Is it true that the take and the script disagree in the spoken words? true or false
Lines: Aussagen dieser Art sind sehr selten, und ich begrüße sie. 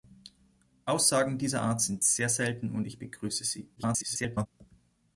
true